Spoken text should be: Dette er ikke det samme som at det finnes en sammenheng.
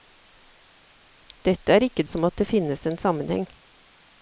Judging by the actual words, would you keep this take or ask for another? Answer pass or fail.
fail